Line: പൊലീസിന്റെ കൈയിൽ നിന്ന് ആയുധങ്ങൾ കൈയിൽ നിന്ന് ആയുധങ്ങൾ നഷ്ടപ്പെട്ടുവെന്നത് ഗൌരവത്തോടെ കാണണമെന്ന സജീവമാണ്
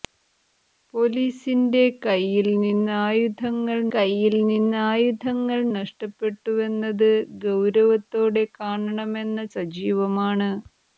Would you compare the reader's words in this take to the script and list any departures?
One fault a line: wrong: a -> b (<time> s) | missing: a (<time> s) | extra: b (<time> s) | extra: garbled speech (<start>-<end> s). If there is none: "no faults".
no faults